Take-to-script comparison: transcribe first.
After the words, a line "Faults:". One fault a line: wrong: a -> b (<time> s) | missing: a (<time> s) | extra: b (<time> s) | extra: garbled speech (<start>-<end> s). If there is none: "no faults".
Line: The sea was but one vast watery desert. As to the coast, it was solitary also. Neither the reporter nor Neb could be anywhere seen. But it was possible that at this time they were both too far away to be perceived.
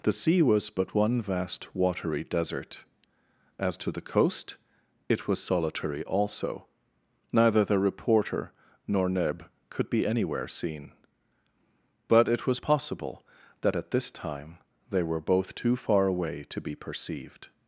The sea was but one vast watery desert. As to the coast, it was solitary also. Neither the reporter nor Neb could be anywhere seen. But it was possible that at this time they were both too far away to be perceived.
Faults:
no faults